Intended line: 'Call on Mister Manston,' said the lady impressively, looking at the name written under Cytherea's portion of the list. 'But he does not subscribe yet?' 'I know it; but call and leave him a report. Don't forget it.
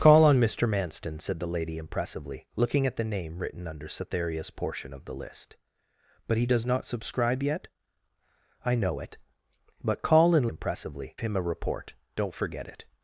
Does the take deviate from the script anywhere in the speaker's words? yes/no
yes